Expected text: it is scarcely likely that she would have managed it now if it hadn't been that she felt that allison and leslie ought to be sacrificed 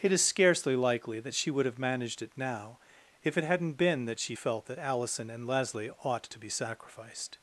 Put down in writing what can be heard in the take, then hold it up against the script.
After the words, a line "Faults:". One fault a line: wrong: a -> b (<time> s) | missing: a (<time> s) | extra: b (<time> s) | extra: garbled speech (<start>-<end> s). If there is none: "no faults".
it is scarcely likely that she would have managed it now if it hadn't been that she felt that allison and leslie ought to be sacrificed
Faults:
no faults